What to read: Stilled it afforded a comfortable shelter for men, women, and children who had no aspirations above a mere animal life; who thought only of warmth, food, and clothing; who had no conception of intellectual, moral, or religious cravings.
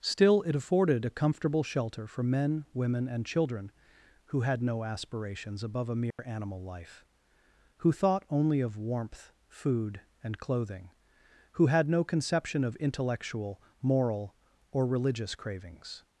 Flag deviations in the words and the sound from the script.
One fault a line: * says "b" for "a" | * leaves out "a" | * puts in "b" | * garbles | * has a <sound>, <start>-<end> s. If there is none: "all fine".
* says "Still" for "Stilled"
* has a dropout, 6.1-6.2 s